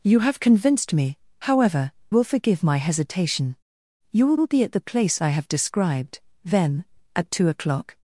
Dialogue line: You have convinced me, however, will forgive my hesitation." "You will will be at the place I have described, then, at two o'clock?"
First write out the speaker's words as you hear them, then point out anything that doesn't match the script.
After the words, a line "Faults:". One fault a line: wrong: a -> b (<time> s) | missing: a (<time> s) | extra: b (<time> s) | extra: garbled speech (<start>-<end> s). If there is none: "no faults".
You have convinced me, however, will forgive my hesitation." "You will will be at the place I have described, then, at two o'clock?"
Faults:
no faults